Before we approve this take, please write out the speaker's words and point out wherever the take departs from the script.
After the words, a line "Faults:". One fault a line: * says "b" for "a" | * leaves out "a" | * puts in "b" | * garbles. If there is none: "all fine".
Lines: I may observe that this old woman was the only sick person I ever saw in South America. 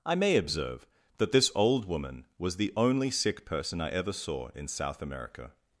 I may observe that this old woman was the only sick person I ever saw in South America.
Faults:
all fine